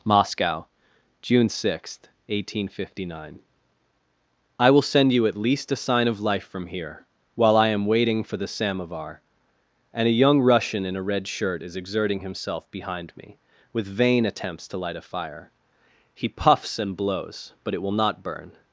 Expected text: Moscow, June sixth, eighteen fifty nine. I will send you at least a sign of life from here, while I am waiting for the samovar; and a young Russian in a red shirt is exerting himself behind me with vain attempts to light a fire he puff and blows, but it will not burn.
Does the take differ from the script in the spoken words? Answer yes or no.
yes